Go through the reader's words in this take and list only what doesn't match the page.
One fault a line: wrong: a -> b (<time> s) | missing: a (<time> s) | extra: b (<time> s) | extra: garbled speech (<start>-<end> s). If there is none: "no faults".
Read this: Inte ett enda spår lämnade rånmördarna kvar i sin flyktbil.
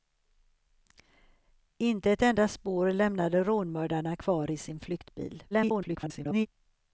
extra: garbled speech (5.5-6.5 s)